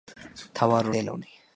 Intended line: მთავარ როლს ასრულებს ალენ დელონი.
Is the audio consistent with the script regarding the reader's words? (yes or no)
no